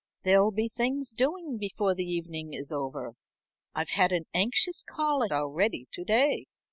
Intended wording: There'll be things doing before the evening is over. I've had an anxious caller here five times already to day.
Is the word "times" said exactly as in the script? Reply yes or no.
no